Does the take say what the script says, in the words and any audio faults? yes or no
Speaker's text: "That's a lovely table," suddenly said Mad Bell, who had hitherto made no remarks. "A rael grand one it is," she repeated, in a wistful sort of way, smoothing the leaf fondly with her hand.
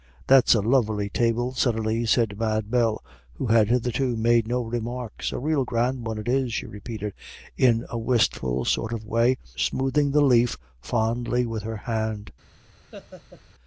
no